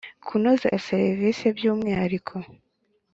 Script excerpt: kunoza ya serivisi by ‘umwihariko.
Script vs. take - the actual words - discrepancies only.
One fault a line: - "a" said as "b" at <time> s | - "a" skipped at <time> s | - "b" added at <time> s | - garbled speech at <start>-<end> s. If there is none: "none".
none